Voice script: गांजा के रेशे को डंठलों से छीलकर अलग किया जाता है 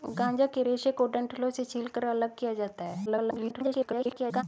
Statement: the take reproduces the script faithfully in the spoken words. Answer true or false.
false